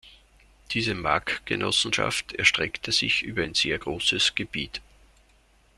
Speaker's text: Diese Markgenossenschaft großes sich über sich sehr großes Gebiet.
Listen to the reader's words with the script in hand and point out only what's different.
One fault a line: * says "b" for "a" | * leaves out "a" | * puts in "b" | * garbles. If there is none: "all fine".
* says "erstreckte" for "großes"
* says "ein" for "sich"